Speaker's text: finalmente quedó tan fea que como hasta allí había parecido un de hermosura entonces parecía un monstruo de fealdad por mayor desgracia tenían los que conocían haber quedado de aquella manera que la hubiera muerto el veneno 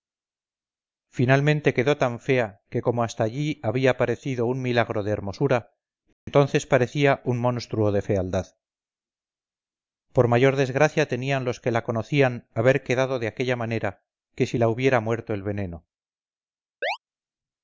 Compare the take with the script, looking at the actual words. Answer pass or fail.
fail